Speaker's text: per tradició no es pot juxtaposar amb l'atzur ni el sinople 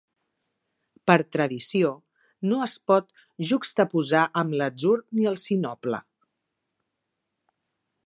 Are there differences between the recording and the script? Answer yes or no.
no